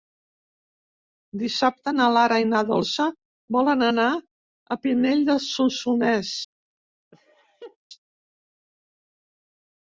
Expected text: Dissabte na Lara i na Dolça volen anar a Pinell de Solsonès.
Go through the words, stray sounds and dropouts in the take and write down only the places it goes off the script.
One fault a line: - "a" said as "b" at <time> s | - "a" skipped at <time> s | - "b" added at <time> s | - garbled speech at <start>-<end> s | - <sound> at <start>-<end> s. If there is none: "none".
- laugh at 7.1-7.8 s